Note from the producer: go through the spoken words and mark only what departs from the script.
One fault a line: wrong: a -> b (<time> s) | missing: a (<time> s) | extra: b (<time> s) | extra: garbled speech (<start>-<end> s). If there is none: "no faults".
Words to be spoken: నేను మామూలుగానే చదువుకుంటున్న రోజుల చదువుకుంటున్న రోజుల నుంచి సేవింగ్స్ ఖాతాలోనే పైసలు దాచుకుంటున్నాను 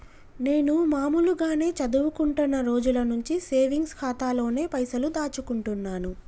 missing: చదువుకుంటున్న రోజుల (3.0 s)